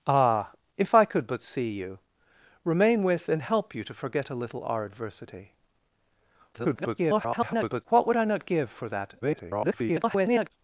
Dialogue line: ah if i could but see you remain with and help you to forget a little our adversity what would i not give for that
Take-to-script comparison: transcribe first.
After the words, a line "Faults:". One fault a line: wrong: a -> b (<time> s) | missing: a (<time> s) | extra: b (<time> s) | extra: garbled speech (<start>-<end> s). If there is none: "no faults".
ah if i could but see you remain with and help you to forget a little our adversity [garbled] what would i not give for that [garbled]
Faults:
extra: garbled speech (6.5-7.8 s)
extra: garbled speech (9.2-10.5 s)